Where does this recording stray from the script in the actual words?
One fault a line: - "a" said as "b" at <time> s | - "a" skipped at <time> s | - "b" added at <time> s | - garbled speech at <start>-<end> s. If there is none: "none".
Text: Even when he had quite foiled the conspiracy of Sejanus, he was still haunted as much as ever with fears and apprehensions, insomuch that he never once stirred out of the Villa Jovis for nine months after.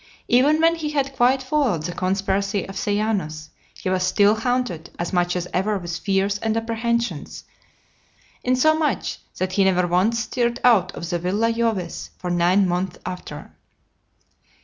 none